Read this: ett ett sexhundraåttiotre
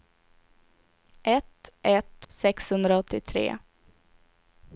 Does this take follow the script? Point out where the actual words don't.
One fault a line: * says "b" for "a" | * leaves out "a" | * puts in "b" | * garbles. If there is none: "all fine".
all fine